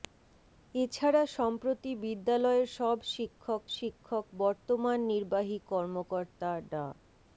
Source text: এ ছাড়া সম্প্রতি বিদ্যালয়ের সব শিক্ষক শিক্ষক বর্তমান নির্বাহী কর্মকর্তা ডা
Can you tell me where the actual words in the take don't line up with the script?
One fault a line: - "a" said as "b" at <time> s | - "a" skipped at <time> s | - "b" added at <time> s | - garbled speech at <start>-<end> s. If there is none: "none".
none